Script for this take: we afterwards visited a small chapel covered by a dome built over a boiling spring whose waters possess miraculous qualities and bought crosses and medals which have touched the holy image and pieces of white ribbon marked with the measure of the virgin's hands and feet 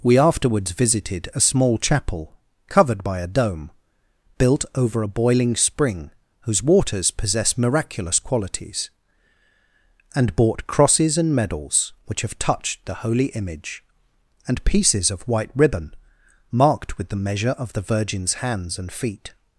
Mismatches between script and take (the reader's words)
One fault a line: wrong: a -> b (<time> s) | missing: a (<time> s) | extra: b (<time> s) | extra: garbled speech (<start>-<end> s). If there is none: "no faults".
no faults